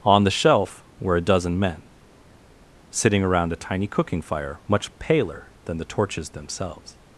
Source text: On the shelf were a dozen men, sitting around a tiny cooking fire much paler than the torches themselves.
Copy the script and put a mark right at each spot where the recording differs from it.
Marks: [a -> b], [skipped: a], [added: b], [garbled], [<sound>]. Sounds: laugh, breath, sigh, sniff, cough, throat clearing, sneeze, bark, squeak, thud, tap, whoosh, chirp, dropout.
On the shelf were a dozen men, sitting around a tiny cooking fire much paler than the torches themselves.